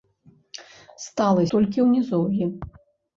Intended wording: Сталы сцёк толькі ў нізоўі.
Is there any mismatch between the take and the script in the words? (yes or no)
yes